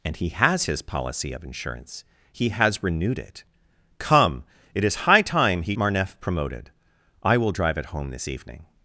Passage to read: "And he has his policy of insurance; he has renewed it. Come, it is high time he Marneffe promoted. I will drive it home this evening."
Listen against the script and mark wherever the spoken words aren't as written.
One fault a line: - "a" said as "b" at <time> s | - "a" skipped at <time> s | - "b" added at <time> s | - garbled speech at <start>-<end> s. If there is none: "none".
none